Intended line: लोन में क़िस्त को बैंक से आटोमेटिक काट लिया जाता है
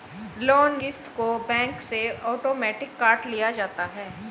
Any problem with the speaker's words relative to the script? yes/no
yes